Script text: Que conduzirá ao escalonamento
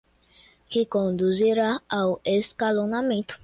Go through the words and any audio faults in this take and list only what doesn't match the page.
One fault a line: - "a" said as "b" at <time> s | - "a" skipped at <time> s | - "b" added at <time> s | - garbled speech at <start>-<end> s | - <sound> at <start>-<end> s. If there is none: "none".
none